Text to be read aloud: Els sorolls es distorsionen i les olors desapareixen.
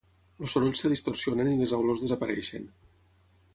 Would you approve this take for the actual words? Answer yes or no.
yes